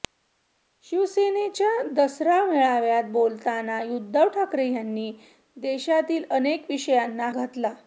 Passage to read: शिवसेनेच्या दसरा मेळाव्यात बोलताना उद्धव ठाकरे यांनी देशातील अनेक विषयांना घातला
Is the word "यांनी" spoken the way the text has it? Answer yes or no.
yes